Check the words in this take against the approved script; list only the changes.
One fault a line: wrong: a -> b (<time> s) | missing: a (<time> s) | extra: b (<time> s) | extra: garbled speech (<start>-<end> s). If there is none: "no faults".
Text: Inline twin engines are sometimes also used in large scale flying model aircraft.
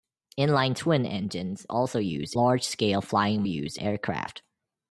missing: are sometimes (1.7 s)
missing: in (2.3 s)
wrong: model -> used (3.4 s)